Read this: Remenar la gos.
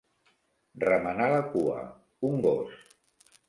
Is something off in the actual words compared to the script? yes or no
yes